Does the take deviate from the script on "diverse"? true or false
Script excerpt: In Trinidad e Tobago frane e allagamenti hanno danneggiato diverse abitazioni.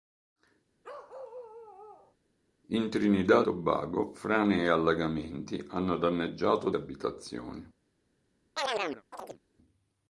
true